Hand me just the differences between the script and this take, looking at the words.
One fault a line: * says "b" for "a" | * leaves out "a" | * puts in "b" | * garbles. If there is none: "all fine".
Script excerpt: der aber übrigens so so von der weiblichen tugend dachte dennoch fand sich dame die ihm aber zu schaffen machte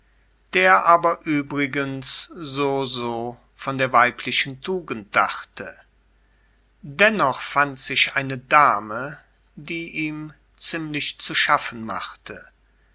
* puts in "eine"
* says "ziemlich" for "aber"